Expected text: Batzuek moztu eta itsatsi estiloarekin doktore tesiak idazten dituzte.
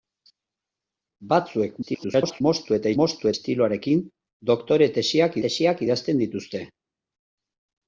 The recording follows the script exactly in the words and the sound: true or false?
false